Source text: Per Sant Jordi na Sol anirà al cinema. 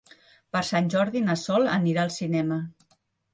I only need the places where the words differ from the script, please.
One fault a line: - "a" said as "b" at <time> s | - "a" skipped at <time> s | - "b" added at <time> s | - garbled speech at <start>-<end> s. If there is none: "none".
none